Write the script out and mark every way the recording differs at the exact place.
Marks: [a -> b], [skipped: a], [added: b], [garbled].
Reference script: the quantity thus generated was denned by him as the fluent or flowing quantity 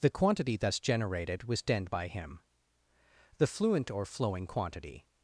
the quantity thus generated was denned by him [skipped: as] the fluent or flowing quantity